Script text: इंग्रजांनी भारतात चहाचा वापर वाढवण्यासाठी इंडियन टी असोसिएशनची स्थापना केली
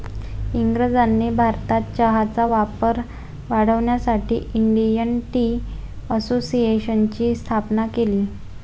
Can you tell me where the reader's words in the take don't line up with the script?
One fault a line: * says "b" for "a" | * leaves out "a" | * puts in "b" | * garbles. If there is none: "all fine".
all fine